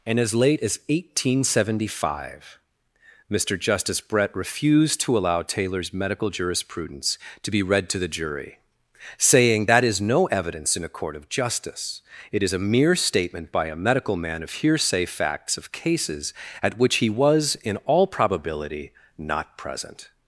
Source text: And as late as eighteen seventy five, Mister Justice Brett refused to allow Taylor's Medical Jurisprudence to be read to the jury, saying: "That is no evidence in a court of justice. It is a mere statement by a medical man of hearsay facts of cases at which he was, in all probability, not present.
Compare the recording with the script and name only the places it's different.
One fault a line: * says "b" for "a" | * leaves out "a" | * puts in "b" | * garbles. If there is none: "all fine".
all fine